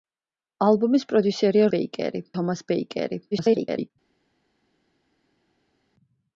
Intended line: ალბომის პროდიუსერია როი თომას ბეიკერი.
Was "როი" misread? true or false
true